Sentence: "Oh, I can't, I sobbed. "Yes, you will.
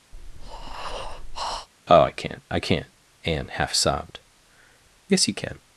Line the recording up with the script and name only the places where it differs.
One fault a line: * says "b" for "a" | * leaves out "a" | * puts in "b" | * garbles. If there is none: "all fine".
* puts in "can't Anne half"
* says "can" for "will"